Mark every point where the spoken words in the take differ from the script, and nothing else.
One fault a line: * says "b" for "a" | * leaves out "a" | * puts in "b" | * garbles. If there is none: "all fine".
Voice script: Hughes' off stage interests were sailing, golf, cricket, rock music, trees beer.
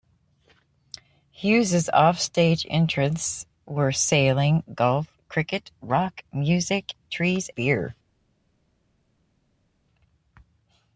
all fine